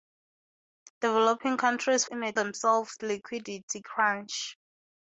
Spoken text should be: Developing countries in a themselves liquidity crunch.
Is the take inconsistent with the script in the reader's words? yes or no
no